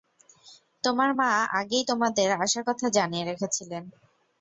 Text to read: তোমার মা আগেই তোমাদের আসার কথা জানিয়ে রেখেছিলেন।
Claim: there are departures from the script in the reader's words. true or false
false